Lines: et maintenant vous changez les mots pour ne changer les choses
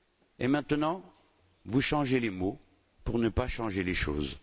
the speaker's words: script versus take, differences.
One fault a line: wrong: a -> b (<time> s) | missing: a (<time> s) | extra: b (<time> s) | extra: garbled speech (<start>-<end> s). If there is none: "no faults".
extra: pas (3.3 s)